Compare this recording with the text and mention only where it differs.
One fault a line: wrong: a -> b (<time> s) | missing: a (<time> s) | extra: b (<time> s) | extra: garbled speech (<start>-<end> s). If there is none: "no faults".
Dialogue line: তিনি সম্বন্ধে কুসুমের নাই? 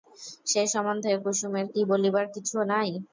wrong: তিনি -> সে (0.5 s)
extra: কি বলিবার কিছু (1.7 s)